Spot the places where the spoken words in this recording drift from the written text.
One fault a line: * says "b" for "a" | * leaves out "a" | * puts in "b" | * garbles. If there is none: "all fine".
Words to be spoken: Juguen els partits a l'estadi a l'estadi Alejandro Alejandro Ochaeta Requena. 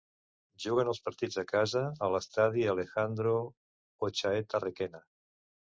* says "casa" for "l'estadi"
* leaves out "Alejandro"